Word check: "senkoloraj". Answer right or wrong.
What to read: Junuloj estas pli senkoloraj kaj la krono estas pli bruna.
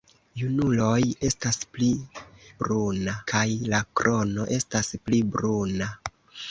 wrong